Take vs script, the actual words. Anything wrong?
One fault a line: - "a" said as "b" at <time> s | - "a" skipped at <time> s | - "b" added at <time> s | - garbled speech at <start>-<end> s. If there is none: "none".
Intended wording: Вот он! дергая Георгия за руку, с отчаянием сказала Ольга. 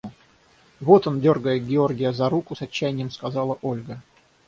none